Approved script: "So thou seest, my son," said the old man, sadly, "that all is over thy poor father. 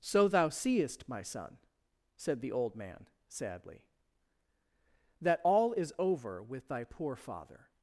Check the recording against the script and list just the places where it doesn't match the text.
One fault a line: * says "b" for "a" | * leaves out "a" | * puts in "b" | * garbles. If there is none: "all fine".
* puts in "with"